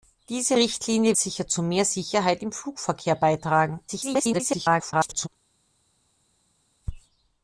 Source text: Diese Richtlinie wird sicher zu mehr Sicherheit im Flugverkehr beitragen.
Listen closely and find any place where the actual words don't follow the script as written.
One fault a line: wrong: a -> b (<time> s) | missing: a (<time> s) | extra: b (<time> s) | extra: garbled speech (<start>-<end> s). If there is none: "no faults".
missing: wird (1.2 s)
extra: garbled speech (3.9-5.3 s)